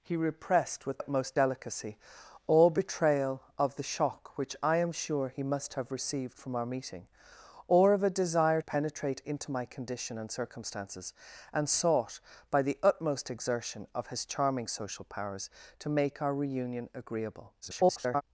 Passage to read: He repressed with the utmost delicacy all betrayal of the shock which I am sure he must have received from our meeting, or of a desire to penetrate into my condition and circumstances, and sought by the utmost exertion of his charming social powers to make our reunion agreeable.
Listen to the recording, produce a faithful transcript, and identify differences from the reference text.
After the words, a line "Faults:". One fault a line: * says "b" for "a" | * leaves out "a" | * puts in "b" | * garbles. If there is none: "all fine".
He repressed with utmost delicacy all betrayal of the shock which I am sure he must have received from our meeting, or of a desire penetrate into my condition and circumstances, and sought by the utmost exertion of his charming social powers to make our reunion agreeable. [garbled]
Faults:
* leaves out "the"
* leaves out "to"
* garbles